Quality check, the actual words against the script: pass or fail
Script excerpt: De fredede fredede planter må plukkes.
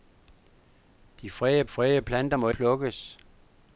pass